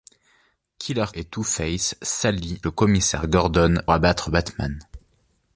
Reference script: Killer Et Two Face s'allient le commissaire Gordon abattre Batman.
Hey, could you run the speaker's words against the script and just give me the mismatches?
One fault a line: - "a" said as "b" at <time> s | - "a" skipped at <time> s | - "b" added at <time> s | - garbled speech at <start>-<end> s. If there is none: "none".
none